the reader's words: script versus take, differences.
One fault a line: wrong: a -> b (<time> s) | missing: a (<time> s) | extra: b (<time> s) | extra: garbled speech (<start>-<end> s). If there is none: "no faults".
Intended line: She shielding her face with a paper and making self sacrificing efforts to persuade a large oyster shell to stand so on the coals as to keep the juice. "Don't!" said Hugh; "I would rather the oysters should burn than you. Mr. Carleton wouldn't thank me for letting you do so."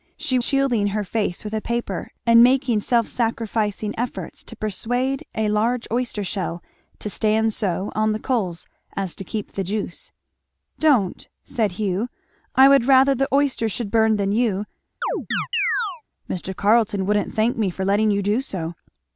no faults